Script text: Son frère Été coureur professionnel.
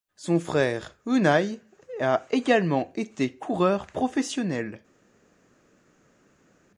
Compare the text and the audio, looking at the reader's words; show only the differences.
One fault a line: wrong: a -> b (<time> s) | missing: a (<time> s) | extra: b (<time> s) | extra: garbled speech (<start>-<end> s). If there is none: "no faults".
extra: Unai a également (1.1 s)